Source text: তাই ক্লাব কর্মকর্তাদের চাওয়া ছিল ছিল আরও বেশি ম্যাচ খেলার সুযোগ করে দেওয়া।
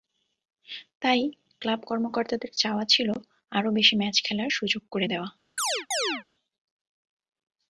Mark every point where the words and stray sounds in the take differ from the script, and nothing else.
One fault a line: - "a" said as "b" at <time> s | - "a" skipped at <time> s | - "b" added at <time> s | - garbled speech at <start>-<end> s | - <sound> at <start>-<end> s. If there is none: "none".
- "ছিল" skipped at 3.1 s
- chirp at 5.6-6.2 s